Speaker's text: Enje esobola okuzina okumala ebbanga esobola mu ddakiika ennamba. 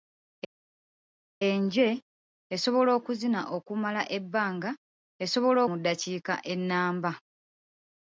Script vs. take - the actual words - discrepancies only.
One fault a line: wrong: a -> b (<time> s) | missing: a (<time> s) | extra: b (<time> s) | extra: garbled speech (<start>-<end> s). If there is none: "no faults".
no faults